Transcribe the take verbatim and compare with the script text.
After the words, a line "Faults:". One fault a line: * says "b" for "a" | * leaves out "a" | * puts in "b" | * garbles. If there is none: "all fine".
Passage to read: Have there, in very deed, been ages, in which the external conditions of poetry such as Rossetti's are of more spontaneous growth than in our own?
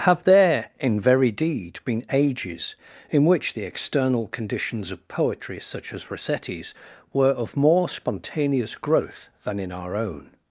Have there, in very deed, been ages, in which the external conditions of poetry such as Rossetti's were of more spontaneous growth than in our own?
Faults:
* says "were" for "are"